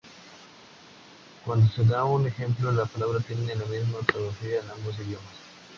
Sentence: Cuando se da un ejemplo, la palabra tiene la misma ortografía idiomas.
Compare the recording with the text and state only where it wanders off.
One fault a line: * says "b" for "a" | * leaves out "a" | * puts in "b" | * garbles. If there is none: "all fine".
* puts in "en ambos"